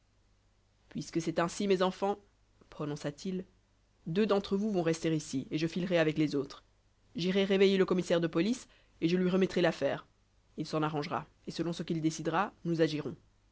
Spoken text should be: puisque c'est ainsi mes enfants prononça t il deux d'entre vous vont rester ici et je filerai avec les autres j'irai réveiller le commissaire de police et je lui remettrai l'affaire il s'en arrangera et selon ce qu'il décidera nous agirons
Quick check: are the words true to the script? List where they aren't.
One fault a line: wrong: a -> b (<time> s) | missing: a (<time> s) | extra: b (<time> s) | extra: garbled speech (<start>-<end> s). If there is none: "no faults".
no faults